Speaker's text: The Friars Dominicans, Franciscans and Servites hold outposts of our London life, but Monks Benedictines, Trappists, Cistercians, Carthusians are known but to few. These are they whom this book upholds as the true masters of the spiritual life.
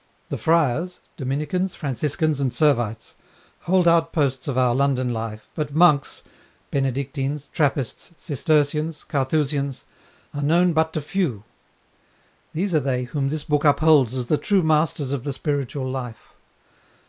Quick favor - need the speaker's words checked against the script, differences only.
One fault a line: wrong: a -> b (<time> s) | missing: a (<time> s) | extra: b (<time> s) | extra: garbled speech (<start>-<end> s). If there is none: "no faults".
no faults